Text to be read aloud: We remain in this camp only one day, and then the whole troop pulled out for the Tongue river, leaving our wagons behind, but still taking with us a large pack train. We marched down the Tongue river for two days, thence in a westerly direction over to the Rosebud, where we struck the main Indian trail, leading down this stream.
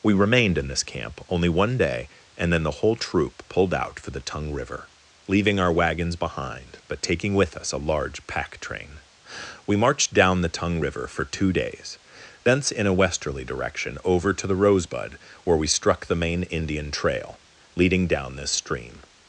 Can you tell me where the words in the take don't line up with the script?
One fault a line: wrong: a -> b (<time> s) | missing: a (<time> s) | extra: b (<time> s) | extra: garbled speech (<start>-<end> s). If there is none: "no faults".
wrong: remain -> remained (0.1 s)
missing: still (7.0 s)